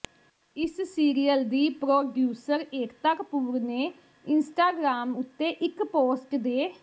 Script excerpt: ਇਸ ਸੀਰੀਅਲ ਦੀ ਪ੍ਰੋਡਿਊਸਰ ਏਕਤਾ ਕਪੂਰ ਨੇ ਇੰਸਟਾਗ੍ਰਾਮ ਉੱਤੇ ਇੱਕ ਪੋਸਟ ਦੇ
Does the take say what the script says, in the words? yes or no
yes